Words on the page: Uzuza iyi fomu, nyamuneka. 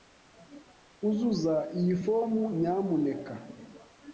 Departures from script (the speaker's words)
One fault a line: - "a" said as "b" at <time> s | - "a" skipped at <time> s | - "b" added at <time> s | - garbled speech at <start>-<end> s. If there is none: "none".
none